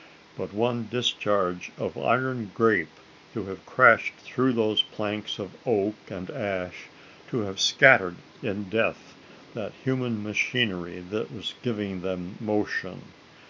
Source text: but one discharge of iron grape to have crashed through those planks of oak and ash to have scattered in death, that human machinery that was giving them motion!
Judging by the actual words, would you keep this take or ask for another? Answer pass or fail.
pass